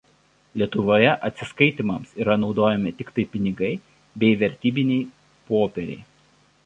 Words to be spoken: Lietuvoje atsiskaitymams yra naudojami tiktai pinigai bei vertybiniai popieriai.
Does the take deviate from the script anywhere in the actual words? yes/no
no